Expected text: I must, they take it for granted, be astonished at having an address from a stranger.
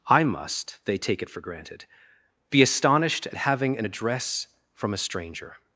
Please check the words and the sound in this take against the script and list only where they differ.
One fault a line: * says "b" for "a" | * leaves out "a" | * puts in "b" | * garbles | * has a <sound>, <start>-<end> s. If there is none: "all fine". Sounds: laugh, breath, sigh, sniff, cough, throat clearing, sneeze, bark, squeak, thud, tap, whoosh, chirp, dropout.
all fine